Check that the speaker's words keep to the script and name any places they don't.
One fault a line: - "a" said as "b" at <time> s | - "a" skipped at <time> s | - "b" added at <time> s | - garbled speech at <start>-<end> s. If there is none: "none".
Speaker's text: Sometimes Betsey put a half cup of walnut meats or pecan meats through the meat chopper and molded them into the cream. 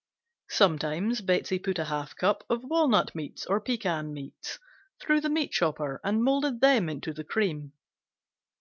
none